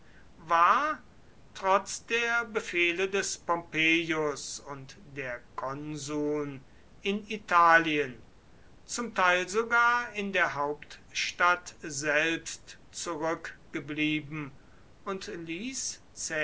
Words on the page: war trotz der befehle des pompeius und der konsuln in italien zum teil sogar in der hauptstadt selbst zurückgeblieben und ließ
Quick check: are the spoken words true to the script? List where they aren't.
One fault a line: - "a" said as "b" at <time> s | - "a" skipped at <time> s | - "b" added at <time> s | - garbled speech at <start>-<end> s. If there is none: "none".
none